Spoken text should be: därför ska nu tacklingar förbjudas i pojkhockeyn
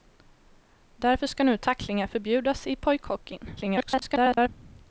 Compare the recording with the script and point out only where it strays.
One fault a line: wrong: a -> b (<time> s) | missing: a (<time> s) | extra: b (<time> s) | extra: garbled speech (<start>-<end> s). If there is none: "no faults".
extra: garbled speech (3.6-4.5 s)